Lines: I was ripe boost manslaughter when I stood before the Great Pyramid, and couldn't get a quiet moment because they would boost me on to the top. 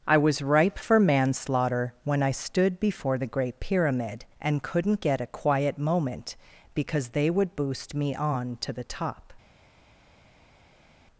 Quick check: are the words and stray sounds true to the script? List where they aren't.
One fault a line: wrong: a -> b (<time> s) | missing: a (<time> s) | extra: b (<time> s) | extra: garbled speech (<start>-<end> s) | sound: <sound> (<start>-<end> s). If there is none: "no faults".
wrong: boost -> for (0.8 s)